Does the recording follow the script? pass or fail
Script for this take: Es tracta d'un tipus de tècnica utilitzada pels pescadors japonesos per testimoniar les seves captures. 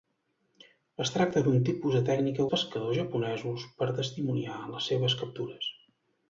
fail